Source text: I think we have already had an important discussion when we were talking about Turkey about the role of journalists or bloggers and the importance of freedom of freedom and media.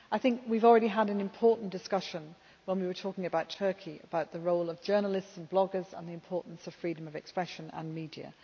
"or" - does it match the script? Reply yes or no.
no